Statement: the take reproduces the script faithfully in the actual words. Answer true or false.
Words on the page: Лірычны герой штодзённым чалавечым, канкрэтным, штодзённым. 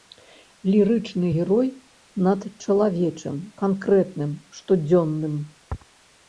false